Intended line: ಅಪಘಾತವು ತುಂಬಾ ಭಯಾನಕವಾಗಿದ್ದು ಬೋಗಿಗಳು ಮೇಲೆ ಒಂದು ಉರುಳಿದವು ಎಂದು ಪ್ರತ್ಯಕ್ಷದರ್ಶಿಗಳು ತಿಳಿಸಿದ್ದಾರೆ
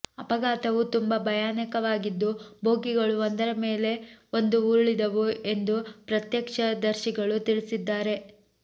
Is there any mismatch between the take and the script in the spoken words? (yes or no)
yes